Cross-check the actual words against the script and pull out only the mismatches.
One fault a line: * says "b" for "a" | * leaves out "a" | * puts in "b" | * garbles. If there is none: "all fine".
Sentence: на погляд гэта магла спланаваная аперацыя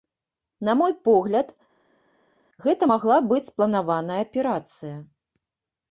* puts in "мой"
* puts in "быць"